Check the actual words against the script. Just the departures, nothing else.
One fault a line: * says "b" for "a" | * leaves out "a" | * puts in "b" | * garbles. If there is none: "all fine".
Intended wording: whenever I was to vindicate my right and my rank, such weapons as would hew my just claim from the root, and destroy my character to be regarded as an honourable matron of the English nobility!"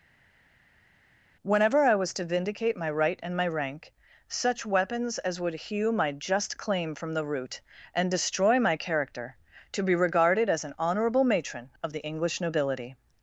all fine